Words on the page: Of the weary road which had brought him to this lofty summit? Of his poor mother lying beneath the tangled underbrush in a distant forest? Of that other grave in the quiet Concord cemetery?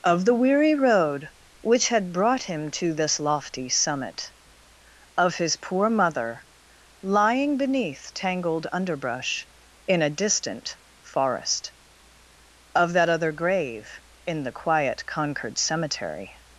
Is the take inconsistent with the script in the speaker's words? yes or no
yes